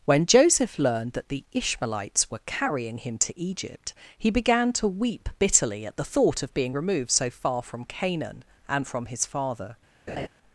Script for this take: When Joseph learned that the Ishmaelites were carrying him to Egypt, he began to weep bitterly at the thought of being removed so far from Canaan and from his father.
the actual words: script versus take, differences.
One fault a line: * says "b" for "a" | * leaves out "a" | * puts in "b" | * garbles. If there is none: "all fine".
all fine